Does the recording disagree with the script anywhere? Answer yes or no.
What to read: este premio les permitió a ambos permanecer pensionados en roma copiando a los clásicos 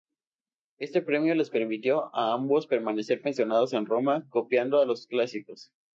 no